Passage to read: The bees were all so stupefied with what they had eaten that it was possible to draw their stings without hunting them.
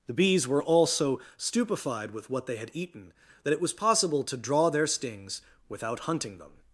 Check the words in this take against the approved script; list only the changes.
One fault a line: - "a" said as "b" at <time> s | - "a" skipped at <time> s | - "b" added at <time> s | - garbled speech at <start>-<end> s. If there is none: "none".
none